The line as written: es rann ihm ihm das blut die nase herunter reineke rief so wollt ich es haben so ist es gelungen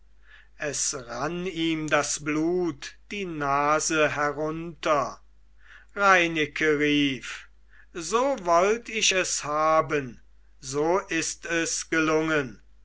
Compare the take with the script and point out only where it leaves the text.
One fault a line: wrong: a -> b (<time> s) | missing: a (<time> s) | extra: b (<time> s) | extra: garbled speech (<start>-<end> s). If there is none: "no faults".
missing: ihm (1.9 s)